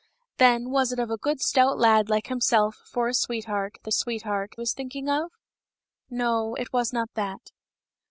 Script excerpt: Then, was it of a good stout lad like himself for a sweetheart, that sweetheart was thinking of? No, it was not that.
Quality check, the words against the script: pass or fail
pass